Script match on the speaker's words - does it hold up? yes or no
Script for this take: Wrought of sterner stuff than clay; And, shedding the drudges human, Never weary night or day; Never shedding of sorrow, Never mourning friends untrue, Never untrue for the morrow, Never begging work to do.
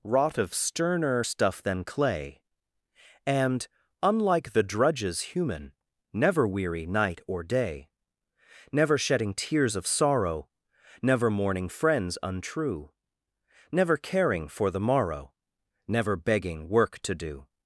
no